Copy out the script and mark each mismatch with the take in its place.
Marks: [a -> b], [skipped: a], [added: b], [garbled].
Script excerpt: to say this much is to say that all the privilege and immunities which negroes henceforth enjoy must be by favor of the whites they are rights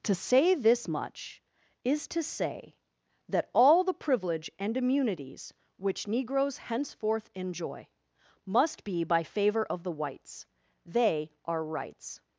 to say this much is to say that all the privilege and immunities which negroes henceforth enjoy must be by favor of the whites they are rights